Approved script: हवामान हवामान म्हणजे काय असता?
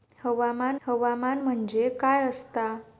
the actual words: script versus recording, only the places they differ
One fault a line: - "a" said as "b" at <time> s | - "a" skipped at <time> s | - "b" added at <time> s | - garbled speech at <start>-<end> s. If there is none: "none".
none